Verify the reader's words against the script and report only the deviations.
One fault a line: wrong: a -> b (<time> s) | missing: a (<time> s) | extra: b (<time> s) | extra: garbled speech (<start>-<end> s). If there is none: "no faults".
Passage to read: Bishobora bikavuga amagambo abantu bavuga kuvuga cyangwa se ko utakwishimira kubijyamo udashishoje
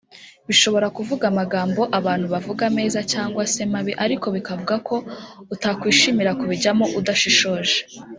wrong: bikavuga -> kuvuga (1.0 s)
wrong: kuvuga -> meza (2.8 s)
extra: mabi ariko bikavuga (3.7 s)